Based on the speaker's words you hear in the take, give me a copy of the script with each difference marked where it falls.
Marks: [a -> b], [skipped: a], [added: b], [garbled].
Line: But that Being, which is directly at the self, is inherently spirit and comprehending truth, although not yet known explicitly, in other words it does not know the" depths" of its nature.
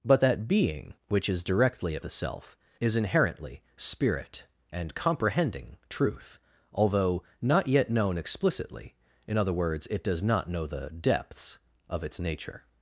But that Being, which is directly at the self, is inherently spirit and comprehending truth, although not yet known explicitly, in other words it does not know the" depths" of its nature.